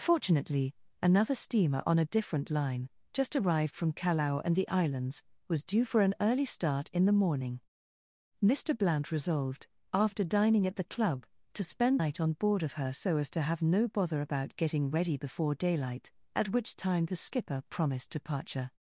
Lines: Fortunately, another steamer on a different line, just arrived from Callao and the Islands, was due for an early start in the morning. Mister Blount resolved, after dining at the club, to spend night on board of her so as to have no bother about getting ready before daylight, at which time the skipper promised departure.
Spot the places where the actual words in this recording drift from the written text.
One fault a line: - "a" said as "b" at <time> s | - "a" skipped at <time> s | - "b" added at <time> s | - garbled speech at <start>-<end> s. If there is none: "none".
none